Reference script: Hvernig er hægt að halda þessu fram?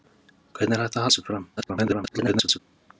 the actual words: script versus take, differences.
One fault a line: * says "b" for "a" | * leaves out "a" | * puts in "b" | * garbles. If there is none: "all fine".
* leaves out "halda"
* garbles